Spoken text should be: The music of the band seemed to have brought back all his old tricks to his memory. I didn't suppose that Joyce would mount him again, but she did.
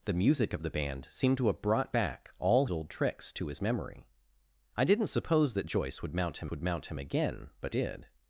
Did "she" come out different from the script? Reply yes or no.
yes